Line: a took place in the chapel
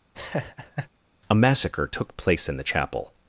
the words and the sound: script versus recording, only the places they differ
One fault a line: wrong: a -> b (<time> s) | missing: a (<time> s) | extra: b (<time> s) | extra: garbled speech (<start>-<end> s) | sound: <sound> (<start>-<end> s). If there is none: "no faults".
sound: laugh (0.1-0.9 s)
extra: massacre (1.3 s)